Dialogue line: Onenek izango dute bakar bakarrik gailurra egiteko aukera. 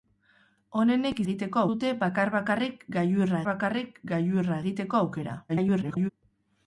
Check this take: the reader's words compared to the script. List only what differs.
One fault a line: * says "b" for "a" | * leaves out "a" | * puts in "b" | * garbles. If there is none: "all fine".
* says "egiteko" for "izango"
* puts in "bakarrik gailurra"
* garbles